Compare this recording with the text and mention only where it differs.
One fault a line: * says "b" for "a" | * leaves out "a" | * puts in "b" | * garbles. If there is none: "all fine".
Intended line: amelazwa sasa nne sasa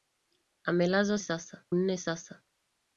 all fine